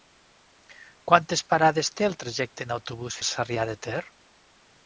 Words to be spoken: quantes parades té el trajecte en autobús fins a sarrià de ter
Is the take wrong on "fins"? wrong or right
wrong